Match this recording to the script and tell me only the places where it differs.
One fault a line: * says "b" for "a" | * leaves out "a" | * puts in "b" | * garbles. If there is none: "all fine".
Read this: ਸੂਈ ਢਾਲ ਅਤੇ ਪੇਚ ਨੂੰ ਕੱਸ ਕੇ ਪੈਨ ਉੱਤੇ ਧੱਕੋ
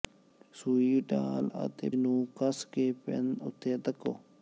* leaves out "ਪੇਚ"